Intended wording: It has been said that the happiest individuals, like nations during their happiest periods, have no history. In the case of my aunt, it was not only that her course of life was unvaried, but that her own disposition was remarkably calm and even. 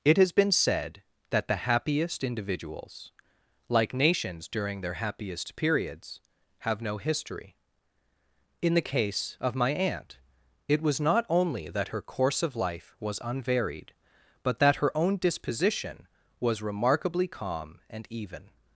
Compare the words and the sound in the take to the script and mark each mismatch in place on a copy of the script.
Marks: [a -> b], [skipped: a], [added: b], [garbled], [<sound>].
It has been said that the happiest individuals, like nations during their happiest periods, have no history. In the case of my aunt, it was not only that her course of life was unvaried, but that her own disposition was remarkably calm and even.